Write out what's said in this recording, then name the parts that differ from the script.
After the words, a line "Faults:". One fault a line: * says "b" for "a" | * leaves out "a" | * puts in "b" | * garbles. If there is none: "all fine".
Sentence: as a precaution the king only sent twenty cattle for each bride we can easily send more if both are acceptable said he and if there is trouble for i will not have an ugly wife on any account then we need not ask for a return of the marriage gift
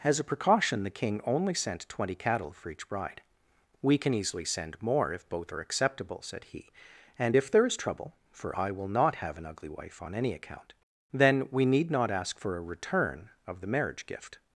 as a precaution the king only sent twenty cattle for each bride we can easily send more if both are acceptable said he and if there is trouble for i will not have an ugly wife on any account then we need not ask for a return of the marriage gift
Faults:
all fine